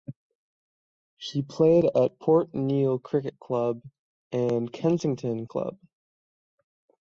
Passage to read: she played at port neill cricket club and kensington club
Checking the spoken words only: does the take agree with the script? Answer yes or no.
yes